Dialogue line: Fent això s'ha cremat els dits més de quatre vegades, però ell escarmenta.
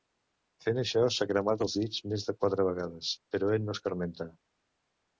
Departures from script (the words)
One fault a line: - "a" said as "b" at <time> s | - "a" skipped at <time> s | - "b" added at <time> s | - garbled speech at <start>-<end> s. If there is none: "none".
- "no" added at 3.7 s